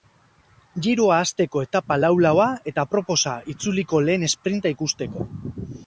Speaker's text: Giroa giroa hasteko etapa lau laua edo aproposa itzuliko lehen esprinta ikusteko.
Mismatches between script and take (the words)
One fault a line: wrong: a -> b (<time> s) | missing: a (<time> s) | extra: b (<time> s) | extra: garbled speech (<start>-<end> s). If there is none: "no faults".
missing: giroa (1.2 s)
wrong: edo -> eta (2.7 s)